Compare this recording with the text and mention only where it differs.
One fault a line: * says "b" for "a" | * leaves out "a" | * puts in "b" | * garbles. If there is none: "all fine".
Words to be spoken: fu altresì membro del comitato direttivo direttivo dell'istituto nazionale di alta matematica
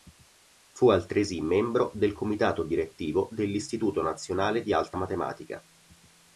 * leaves out "direttivo"